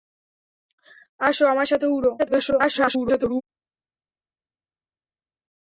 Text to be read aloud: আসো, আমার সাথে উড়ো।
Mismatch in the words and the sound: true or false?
true